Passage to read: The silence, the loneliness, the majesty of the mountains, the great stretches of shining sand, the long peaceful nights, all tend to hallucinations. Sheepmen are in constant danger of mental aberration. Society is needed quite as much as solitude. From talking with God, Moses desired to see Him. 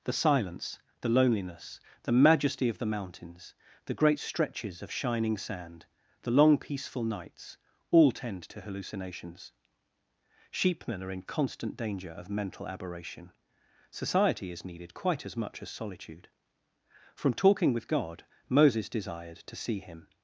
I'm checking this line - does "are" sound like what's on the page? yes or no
yes